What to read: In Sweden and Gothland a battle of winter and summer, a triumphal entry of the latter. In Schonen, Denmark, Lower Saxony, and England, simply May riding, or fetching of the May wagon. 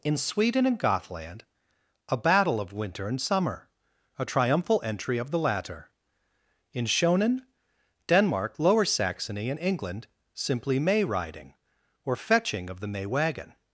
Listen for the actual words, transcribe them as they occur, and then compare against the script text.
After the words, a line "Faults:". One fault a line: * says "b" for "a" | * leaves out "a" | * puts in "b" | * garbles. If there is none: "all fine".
In Sweden and Gothland a battle of winter and summer, a triumphal entry of the latter. In Schonen, Denmark, Lower Saxony, and England, simply May riding, or fetching of the May wagon.
Faults:
all fine